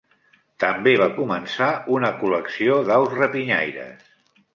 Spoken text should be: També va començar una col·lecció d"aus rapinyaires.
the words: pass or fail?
pass